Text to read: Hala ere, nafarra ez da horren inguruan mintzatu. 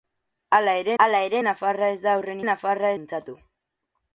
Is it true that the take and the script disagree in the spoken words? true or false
true